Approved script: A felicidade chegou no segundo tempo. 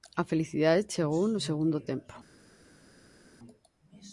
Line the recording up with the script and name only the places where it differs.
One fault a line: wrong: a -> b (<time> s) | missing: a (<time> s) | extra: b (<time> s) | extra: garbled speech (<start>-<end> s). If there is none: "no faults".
no faults